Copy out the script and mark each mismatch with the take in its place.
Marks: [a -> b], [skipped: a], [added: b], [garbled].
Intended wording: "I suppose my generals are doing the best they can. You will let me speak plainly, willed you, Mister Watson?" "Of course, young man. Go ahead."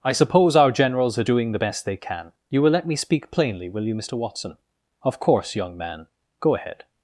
"I suppose [my -> our] generals are doing the best they can. You will let me speak plainly, [willed -> will] you, Mister Watson?" "Of course, young man. Go ahead."